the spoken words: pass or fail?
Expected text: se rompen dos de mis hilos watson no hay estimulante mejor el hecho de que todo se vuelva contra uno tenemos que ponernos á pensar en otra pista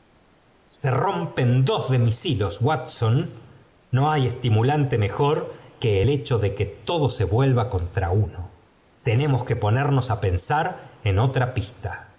fail